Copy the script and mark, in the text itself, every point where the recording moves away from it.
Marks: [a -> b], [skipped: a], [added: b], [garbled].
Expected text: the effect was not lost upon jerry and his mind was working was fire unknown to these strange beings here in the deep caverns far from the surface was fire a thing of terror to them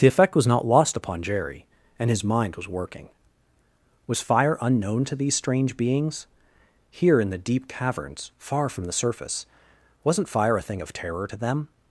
the effect was not lost upon jerry and his mind was working was fire unknown to these strange beings here in the deep caverns far from the surface [was -> wasn't] fire a thing of terror to them